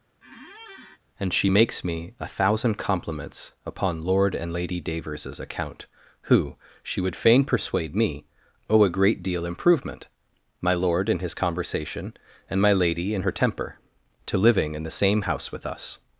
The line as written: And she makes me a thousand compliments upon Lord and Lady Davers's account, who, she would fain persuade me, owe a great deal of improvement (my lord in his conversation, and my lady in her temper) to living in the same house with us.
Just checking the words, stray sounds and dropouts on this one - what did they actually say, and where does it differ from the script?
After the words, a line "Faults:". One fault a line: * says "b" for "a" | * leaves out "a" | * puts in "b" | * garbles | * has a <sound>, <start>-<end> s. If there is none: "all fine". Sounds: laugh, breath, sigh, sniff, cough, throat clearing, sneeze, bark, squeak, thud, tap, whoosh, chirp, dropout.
And she makes me a thousand compliments upon Lord and Lady Davers's account, who, she would fain persuade me, owe a great deal improvement (my lord in his conversation, and my lady in her temper) to living in the same house with us.
Faults:
* has a squeak, 0.2-1.0 s
* leaves out "of"